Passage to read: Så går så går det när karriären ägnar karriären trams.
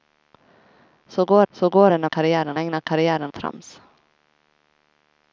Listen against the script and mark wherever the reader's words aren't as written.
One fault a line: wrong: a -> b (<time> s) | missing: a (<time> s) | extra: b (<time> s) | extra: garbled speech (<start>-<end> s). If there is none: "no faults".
no faults